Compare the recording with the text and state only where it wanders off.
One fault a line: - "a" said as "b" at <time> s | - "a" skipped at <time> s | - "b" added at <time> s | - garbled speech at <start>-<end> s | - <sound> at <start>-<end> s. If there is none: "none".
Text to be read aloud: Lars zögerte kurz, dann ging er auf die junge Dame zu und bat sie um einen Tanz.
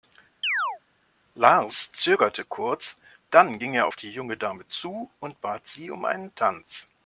- chirp at 0.4-0.8 s